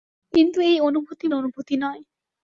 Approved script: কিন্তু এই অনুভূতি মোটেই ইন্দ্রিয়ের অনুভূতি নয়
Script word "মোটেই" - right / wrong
wrong